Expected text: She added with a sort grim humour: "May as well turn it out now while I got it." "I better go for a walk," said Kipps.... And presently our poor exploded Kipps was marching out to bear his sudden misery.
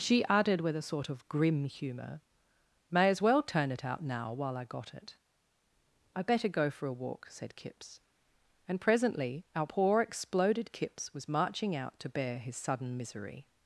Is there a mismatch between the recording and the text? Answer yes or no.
yes